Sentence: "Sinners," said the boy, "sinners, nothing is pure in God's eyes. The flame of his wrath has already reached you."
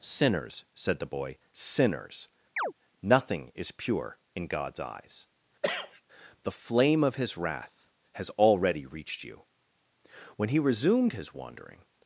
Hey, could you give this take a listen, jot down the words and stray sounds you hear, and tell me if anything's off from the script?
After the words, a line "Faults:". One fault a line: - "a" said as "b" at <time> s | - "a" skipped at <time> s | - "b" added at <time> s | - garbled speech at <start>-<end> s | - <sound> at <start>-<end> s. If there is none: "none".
"Sinners," said the boy, "sinners, nothing is pure in God's eyes. The flame of his wrath has already reached you." When he resumed his wandering
Faults:
- chirp at 2.6-2.7 s
- cough at 5.6-6.0 s
- "When he resumed his wandering" added at 10.4 s